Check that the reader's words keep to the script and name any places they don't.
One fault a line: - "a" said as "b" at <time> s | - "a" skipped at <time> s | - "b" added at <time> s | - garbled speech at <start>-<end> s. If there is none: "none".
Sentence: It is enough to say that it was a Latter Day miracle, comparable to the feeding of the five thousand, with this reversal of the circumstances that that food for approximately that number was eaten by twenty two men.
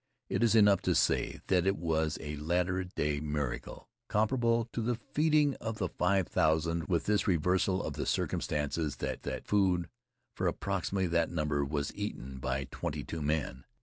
none